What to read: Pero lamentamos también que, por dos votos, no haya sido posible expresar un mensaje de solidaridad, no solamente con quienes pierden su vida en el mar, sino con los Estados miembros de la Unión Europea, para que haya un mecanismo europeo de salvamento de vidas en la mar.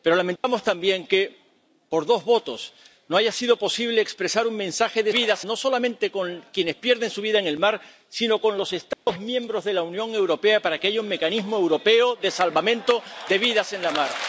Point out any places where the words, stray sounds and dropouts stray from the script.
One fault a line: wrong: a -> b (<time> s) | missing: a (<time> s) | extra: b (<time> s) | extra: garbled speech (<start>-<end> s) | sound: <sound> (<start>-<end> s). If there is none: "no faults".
sound: dropout (0.4-0.4 s)
wrong: solidaridad -> vidas (5.1 s)
sound: dropout (8.9-9.1 s)